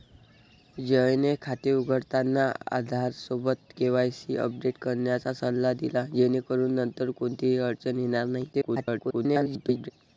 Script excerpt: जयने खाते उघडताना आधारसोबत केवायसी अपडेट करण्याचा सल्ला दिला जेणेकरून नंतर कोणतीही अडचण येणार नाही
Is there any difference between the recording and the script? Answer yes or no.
yes